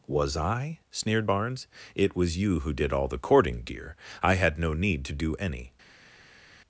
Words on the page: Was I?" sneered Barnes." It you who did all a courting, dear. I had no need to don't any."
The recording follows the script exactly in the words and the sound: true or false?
false